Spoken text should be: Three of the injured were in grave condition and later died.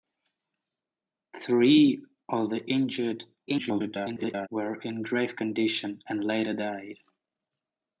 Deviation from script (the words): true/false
true